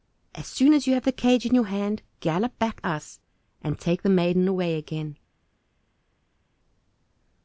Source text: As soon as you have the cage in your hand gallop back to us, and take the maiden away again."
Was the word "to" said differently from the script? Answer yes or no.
yes